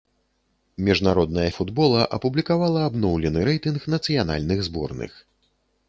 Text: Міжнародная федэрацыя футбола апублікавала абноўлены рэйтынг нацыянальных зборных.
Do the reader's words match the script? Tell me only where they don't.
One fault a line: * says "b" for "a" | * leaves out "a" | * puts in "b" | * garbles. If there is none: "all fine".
* leaves out "федэрацыя"